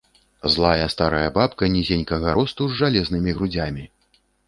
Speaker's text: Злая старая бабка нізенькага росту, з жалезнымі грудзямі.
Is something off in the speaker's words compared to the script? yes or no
no